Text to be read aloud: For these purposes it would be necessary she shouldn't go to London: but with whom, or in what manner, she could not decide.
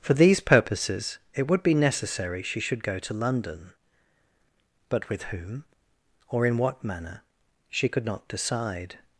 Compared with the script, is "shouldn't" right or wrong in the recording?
wrong